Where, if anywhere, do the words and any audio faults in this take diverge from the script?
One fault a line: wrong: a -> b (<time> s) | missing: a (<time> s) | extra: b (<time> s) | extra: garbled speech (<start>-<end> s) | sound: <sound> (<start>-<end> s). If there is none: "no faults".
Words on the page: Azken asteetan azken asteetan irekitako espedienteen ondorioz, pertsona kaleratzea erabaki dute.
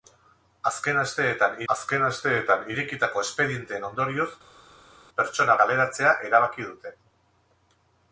no faults